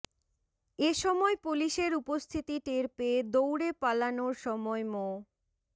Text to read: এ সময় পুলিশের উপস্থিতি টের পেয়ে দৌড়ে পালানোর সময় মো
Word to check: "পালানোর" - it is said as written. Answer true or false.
true